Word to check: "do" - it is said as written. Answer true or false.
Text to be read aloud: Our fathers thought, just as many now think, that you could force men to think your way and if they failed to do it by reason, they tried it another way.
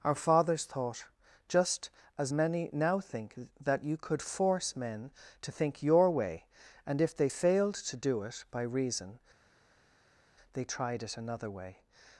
true